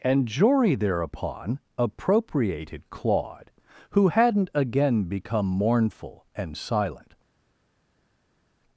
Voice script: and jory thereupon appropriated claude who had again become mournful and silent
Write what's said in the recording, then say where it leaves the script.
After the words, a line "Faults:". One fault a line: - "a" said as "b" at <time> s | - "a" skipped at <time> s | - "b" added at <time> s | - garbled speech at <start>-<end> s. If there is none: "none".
and jory thereupon appropriated claude who hadn't again become mournful and silent
Faults:
- "had" said as "hadn't" at 4.0 s